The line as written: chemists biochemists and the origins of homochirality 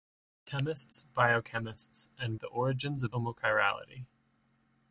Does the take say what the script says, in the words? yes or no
yes